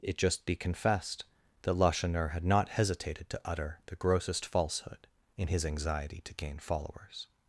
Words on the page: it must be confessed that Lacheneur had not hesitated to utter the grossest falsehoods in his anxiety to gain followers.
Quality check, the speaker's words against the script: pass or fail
fail